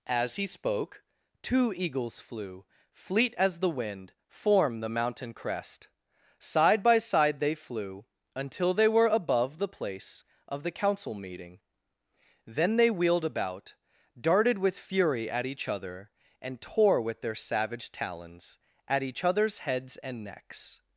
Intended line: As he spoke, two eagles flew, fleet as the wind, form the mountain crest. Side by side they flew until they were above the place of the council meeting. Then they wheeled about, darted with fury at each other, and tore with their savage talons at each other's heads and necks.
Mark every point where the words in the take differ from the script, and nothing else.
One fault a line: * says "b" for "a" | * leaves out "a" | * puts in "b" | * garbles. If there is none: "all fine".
all fine